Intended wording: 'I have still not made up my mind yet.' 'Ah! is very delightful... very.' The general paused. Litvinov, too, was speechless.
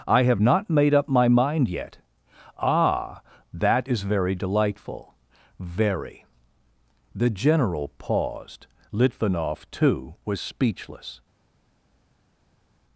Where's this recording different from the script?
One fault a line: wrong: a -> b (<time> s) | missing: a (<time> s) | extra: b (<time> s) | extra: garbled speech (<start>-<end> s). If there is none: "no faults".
missing: still (0.4 s)
extra: that (3.5 s)